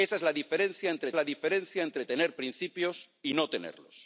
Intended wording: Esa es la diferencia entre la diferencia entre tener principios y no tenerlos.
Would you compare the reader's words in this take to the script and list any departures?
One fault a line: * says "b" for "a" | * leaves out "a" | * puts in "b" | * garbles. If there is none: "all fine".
all fine